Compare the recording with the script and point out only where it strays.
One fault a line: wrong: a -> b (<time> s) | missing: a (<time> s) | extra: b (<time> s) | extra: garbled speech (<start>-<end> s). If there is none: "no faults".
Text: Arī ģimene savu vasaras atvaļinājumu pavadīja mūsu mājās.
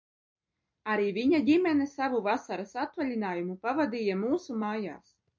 extra: viņa (1.2 s)